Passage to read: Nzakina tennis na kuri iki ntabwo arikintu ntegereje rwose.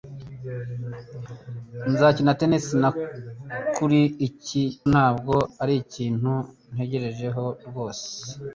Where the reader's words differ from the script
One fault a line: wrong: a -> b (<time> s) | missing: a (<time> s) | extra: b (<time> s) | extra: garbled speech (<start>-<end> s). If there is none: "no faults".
no faults